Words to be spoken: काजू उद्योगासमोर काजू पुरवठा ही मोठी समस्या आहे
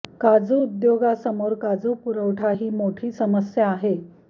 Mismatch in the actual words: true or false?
false